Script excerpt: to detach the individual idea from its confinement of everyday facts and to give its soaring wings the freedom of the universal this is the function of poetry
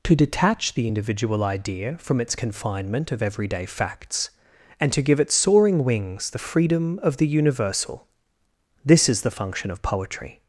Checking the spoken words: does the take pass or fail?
pass